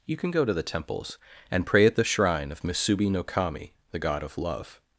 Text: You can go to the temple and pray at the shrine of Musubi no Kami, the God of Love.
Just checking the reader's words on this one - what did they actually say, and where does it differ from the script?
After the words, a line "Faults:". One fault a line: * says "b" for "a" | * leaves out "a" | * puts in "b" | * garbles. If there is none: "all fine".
You can go to the temples and pray at the shrine of Musubi no Kami, the God of Love.
Faults:
* says "temples" for "temple"